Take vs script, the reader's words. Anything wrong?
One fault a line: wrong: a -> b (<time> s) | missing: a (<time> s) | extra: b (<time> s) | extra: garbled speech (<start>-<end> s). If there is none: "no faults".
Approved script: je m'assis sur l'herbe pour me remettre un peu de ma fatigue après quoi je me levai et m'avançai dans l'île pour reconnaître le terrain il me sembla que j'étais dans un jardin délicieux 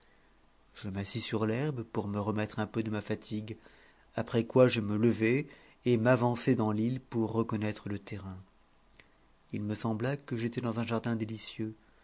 no faults